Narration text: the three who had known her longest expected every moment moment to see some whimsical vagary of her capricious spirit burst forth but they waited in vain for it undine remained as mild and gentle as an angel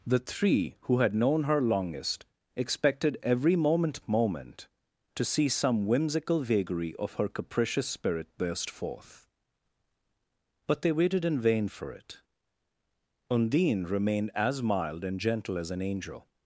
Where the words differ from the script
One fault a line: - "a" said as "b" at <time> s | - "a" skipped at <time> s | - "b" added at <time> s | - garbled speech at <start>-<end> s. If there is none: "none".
none